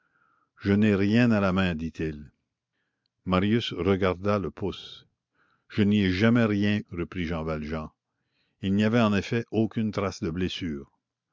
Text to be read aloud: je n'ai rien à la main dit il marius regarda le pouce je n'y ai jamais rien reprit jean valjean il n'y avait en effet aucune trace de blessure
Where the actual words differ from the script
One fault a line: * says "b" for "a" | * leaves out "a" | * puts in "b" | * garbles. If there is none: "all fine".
all fine